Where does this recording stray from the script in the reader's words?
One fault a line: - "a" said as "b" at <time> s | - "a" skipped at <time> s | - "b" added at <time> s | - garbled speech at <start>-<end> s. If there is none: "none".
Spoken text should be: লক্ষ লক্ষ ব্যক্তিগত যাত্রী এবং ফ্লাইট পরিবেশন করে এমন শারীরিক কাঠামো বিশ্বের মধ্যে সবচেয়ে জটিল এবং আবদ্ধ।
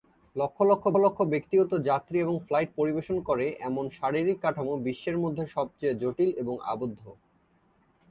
- "লক্ষ" added at 1.0 s